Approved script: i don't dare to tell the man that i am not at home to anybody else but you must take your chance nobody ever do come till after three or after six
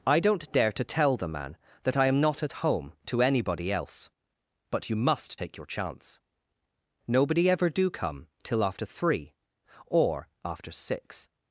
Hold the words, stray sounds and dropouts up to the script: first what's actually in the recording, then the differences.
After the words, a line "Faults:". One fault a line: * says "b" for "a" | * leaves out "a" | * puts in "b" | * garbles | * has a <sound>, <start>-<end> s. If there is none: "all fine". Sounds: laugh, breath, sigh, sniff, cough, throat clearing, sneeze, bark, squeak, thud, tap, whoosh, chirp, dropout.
i don't dare to tell the man that i am not at home to anybody else but you must take your chance nobody ever do come till after three or after six
Faults:
all fine